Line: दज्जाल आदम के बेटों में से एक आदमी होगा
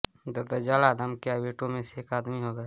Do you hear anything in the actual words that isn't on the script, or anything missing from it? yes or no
no